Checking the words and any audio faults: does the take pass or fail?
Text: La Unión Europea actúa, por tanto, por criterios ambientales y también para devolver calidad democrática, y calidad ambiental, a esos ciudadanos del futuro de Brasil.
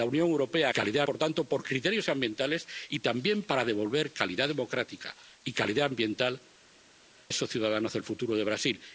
fail